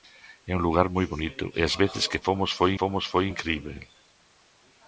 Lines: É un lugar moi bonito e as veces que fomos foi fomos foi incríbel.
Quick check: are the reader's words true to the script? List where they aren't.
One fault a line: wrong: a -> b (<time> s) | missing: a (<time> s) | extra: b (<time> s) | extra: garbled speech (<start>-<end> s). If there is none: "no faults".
no faults